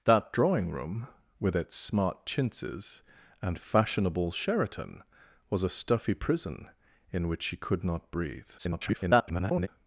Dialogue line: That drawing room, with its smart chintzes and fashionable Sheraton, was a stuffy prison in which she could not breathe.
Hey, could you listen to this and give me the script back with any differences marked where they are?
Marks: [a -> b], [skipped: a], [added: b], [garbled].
That drawing room, with its smart chintzes and fashionable Sheraton, was a stuffy prison in which she could not breathe. [garbled]